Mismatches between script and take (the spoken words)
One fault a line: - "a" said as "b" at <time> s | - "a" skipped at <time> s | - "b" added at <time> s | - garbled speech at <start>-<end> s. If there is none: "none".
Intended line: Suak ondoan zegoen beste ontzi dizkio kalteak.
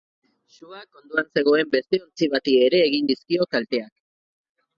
- "bati ere egin" added at 2.4 s